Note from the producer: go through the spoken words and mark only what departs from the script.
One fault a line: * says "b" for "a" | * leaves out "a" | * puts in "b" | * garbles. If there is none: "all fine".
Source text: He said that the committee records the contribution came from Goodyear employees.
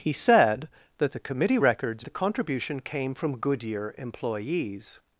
all fine